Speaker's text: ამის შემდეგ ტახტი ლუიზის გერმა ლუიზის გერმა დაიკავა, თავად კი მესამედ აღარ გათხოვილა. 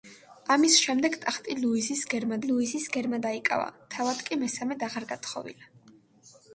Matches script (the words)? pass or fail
pass